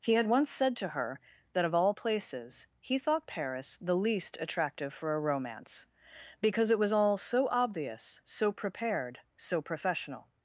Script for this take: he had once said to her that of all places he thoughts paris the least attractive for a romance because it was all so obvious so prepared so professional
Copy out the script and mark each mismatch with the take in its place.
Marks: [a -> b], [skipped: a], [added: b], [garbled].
he had once said to her that of all places he [thoughts -> thought] paris the least attractive for a romance because it was all so obvious so prepared so professional